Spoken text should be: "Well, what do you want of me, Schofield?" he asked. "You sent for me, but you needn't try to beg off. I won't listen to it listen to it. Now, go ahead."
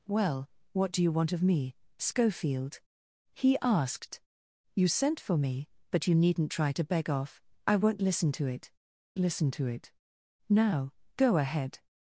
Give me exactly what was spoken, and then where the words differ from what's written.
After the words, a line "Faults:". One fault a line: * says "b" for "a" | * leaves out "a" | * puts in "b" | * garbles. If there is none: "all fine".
"Well, what do you want of me, Schofield?" he asked. "You sent for me, but you needn't try to beg off. I won't listen to it listen to it. Now, go ahead."
Faults:
all fine